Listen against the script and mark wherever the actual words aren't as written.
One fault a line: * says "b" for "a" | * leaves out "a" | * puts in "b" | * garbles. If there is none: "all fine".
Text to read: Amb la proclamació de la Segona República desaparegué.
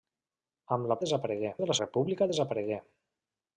* says "desaparegué" for "proclamació"
* leaves out "Segona"